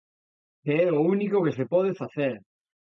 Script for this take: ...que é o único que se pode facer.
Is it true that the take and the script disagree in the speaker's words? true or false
false